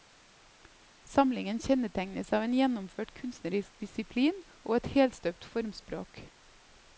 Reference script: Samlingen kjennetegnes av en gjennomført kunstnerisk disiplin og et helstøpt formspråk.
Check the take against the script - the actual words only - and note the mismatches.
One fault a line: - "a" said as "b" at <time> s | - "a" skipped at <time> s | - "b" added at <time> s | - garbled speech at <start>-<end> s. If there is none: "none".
none